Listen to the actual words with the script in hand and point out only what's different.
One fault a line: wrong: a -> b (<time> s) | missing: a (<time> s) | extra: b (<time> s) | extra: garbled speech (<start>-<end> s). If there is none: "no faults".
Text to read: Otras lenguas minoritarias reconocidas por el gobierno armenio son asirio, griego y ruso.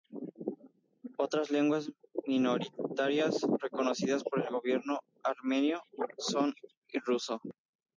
missing: asirio griego (6.5 s)